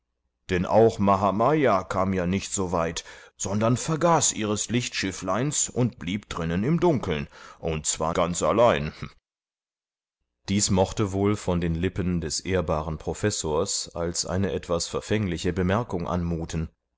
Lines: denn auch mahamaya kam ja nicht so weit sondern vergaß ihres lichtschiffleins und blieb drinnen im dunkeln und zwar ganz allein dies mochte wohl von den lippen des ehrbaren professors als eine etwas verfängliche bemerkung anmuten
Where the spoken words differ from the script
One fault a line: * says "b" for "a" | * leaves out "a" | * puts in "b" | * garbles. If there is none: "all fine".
all fine